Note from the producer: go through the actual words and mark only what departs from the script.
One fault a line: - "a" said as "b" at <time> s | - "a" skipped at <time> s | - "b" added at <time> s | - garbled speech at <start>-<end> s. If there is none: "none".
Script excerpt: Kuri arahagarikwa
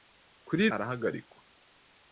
none